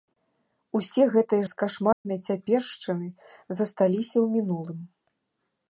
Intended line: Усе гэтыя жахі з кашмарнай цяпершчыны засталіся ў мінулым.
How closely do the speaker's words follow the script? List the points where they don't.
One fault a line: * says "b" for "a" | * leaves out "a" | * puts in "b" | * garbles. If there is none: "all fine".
* leaves out "жахі"